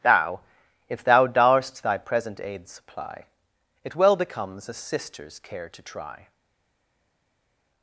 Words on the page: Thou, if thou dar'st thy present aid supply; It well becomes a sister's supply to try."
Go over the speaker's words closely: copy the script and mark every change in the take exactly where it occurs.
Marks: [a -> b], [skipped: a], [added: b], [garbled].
Thou, if thou dar'st thy present aid supply; It well becomes a sister's [supply -> care] to try."